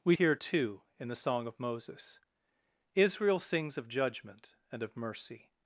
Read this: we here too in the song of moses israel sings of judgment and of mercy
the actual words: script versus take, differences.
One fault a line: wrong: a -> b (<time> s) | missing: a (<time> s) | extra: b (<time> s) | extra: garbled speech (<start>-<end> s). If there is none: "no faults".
no faults